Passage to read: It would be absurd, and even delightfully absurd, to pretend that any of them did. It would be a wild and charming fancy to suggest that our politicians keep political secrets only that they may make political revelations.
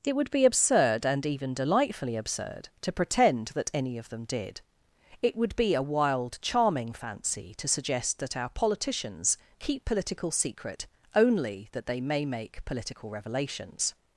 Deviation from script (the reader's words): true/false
true